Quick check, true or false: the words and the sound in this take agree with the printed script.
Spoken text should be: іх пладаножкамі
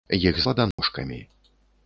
false